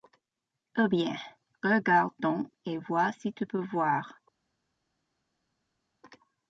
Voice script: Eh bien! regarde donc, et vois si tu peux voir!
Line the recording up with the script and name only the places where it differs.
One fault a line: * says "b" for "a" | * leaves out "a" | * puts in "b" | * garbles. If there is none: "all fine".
all fine